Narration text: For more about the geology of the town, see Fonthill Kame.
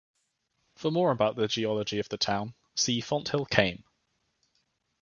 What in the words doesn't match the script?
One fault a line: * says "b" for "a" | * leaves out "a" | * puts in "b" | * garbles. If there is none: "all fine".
all fine